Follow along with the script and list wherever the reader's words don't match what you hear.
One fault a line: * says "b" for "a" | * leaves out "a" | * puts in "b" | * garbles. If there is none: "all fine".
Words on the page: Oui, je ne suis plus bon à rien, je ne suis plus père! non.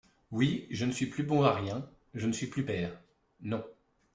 all fine